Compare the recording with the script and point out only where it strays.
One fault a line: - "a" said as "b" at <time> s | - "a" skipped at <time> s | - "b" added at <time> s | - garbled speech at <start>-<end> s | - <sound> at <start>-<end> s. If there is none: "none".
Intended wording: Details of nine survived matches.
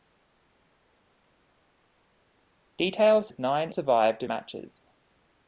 none